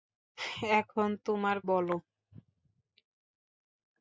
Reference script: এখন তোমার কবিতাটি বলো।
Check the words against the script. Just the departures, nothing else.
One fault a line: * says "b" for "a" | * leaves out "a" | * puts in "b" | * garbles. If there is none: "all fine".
* leaves out "কবিতাটি"